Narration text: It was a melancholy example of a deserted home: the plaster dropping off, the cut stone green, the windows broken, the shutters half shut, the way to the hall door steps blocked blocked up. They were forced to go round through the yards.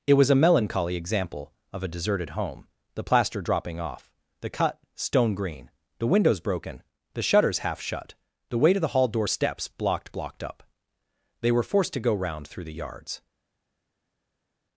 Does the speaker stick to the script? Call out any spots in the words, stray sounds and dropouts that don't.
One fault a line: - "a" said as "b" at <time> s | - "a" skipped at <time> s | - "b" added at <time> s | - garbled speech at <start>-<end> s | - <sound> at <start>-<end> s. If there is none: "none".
none